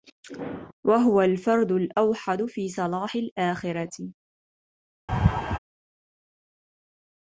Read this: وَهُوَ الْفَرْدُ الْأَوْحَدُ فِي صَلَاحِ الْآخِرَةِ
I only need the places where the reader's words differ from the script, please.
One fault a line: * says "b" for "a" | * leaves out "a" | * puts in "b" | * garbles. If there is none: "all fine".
all fine